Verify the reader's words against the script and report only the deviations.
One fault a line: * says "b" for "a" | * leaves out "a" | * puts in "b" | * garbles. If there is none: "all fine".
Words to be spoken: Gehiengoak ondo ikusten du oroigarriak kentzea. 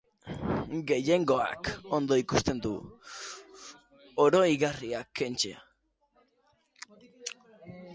all fine